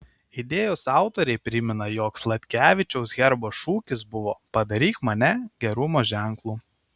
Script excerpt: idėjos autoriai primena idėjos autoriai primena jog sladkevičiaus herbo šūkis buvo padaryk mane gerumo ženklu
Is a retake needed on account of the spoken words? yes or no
yes